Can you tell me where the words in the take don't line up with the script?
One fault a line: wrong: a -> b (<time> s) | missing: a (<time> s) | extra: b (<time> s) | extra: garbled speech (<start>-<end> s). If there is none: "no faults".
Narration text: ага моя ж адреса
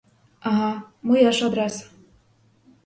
no faults